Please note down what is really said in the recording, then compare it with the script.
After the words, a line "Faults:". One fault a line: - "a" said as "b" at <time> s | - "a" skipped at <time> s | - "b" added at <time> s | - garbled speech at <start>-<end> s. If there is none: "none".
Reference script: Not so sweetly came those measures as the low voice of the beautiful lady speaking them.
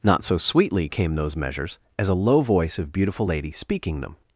Not so sweetly came those measures as a low voice of beautiful lady speaking them.
Faults:
- "the" said as "a" at 2.1 s
- "the" skipped at 2.9 s